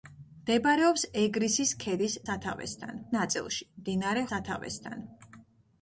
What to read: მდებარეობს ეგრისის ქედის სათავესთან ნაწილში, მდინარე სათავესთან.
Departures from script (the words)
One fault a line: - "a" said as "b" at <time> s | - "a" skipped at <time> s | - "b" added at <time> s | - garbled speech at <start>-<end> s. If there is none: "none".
none